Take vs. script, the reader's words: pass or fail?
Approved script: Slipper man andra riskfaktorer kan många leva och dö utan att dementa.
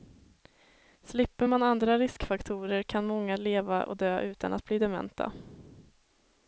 fail